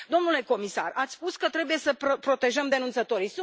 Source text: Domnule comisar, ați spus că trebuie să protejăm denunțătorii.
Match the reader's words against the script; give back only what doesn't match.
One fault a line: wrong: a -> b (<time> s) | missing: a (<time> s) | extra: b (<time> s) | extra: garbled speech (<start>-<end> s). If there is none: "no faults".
no faults